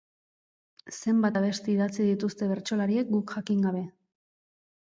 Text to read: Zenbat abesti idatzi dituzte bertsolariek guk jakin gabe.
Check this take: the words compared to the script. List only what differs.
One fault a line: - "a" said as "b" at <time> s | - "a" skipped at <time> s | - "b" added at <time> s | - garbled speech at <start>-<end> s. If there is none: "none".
none